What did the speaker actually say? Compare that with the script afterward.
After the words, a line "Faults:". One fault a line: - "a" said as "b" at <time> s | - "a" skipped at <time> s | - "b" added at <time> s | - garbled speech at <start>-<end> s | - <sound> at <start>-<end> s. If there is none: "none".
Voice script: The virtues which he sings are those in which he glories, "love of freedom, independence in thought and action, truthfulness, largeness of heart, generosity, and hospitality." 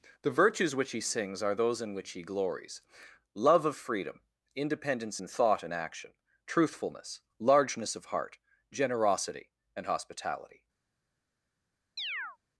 The virtues which he sings are those in which he glories, "love of freedom, independence in thought and action, truthfulness, largeness of heart, generosity, and hospitality."
Faults:
- chirp at 12.0-12.4 s